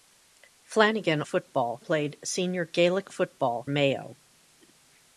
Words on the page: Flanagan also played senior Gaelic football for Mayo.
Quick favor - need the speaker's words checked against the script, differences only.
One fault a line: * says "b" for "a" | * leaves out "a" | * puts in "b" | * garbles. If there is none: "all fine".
* says "football" for "also"
* leaves out "for"